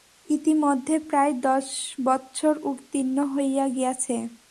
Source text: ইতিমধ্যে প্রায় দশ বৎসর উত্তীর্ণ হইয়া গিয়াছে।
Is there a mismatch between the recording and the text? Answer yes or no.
no